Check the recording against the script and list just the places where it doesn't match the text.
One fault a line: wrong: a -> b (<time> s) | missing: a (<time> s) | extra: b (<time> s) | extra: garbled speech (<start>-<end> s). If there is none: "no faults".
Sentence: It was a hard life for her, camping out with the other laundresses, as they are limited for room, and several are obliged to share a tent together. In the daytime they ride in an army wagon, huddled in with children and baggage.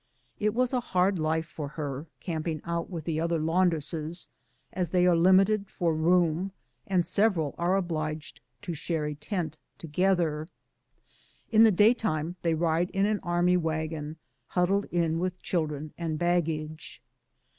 no faults